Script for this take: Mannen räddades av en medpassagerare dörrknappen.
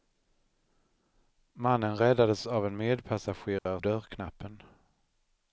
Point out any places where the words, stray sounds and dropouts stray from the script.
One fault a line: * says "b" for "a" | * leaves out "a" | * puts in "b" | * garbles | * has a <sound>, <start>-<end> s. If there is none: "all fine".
* has a dropout, 3.6-3.7 s